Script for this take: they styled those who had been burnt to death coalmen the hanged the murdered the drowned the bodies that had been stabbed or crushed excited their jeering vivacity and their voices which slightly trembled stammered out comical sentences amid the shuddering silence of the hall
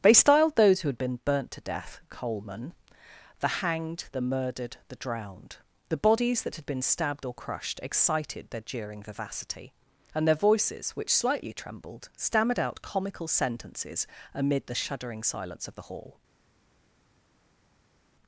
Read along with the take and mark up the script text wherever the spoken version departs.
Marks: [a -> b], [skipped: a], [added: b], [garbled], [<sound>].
they styled those who had been burnt to death coalmen the hanged the murdered the drowned the bodies that had been stabbed or crushed excited their jeering vivacity and their voices which slightly trembled stammered out comical sentences amid the shuddering silence of the hall